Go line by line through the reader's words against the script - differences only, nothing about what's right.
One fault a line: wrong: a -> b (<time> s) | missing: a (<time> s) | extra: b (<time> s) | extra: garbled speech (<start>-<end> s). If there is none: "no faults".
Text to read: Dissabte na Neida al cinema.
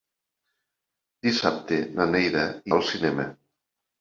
no faults